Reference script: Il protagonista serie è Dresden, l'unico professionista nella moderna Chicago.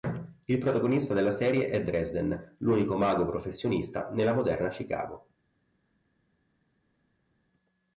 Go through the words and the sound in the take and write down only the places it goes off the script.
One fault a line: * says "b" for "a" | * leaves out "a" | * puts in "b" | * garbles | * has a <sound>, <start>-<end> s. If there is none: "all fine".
* puts in "della"
* puts in "mago"